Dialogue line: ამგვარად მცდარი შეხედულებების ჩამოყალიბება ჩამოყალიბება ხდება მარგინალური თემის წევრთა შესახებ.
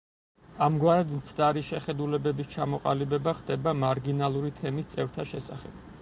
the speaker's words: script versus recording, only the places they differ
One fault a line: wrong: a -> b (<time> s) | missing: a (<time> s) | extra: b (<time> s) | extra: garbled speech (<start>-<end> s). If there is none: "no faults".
missing: ჩამოყალიბება (3.3 s)